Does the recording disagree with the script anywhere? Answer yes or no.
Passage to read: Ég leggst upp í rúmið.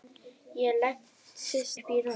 yes